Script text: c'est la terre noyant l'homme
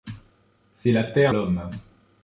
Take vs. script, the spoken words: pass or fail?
fail